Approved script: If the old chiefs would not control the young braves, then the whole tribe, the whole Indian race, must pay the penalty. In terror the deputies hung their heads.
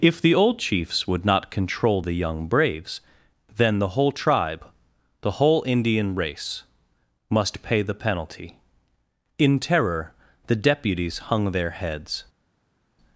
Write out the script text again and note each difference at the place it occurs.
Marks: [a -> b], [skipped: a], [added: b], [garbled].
If the old chiefs would not control the young braves, then the whole tribe, the whole Indian race, must pay the penalty. In terror the deputies hung their heads.